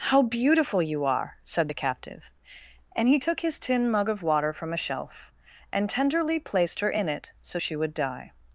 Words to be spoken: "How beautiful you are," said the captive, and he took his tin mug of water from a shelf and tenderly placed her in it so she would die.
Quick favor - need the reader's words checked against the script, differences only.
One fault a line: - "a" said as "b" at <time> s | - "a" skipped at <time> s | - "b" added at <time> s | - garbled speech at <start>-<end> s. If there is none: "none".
none